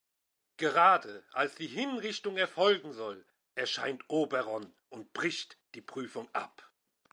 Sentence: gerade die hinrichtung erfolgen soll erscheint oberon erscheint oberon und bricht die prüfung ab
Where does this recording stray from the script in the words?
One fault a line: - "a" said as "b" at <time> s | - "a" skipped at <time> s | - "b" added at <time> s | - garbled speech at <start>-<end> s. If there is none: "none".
- "als" added at 1.3 s
- "erscheint oberon" skipped at 4.7 s